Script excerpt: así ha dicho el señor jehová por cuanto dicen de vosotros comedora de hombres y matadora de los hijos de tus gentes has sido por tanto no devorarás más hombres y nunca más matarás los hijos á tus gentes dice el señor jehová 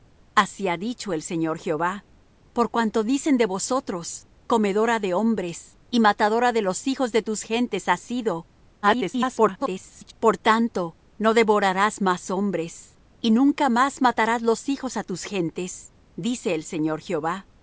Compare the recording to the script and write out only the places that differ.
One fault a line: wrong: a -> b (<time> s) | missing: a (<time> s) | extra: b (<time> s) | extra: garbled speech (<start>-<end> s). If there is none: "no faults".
extra: garbled speech (8.8-10.1 s)